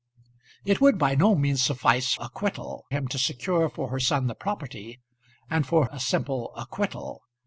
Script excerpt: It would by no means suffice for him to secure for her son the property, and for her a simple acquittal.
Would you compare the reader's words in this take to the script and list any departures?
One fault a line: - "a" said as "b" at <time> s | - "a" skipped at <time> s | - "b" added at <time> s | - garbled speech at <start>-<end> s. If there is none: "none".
- "for" said as "acquittal" at 2.2 s
- "her" skipped at 5.8 s